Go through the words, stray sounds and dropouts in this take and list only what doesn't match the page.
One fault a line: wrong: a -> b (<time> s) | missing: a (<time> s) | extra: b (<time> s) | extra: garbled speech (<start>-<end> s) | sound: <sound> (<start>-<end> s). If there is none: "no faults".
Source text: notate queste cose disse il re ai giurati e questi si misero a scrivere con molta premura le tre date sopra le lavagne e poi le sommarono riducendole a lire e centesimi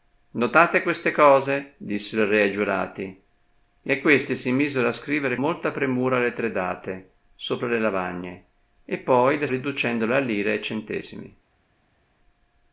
missing: con (5.4 s)
missing: sommarono (9.5 s)